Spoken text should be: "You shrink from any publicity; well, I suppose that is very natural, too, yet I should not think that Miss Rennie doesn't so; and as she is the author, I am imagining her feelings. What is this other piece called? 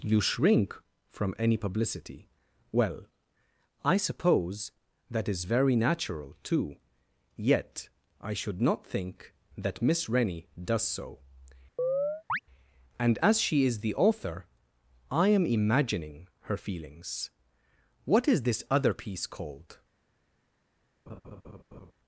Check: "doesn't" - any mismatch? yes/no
yes